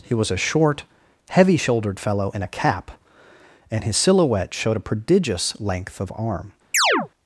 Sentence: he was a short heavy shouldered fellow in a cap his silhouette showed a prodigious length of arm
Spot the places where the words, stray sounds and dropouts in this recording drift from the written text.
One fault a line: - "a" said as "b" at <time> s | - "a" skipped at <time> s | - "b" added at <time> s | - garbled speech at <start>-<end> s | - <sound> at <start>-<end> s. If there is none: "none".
- "and" added at 3.7 s
- chirp at 6.7-7.1 s